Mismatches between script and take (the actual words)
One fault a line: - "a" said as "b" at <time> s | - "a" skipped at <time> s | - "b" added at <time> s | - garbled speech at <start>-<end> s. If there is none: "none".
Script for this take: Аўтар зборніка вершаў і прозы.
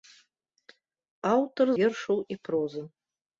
- "зборніка" skipped at 1.7 s